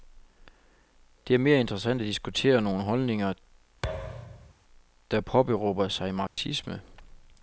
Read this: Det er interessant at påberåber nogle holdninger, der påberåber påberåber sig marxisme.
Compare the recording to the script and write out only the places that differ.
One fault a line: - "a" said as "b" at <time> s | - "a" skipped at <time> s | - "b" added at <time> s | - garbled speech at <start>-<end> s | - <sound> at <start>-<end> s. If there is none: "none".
- "mere" added at 1.4 s
- "påberåber" said as "diskutere" at 2.1 s
- thud at 3.8-4.5 s
- "påberåber" skipped at 5.9 s
- dropout at 6.3-6.4 s